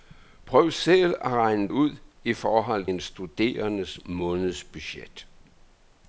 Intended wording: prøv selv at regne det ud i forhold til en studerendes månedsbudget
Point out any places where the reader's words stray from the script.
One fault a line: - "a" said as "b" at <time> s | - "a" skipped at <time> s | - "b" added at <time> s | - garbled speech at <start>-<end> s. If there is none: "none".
- "det" skipped at 1.7 s
- "til" skipped at 2.9 s